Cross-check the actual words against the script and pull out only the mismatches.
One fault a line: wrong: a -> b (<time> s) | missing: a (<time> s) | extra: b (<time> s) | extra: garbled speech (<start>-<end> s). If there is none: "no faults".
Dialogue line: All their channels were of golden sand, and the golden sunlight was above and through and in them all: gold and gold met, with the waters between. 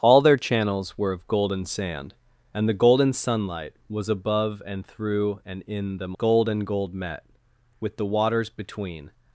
missing: all (6.2 s)